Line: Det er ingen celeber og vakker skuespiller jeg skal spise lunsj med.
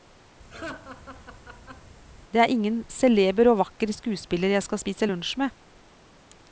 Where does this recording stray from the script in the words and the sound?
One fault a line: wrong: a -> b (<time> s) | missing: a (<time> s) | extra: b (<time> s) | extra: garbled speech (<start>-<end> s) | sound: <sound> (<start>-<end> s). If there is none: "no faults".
sound: laugh (0.5-1.9 s)